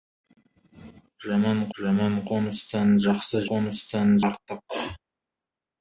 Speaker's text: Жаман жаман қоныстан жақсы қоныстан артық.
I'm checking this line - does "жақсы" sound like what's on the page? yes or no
yes